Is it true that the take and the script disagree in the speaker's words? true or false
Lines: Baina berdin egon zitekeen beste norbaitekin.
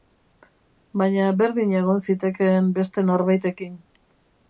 false